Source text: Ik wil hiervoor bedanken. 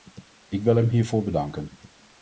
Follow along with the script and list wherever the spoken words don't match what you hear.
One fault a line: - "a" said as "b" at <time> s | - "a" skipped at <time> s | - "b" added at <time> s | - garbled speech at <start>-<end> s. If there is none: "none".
- "hem" added at 0.8 s